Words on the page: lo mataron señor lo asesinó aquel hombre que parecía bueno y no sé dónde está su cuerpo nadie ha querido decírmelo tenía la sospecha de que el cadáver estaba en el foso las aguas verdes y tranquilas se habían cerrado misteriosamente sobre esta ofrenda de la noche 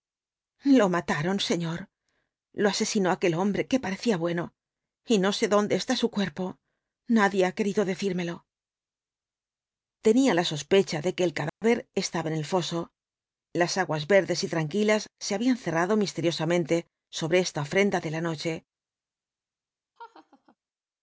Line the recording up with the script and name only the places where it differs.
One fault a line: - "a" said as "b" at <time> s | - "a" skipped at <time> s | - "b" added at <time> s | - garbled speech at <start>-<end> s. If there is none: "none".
none